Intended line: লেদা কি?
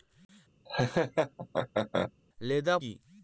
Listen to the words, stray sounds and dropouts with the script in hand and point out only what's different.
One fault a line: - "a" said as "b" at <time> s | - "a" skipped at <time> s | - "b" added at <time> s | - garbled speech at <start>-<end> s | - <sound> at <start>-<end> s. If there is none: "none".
- laugh at 0.7-2.1 s